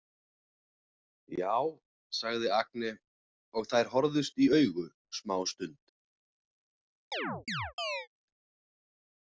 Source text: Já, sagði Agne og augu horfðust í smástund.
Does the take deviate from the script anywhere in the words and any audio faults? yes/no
yes